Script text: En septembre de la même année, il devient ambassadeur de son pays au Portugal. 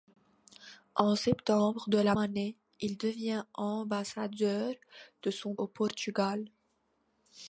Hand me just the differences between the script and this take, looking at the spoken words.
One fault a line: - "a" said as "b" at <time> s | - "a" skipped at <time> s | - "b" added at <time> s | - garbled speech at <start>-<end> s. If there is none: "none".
- "même" skipped at 2.1 s
- "pays" skipped at 5.5 s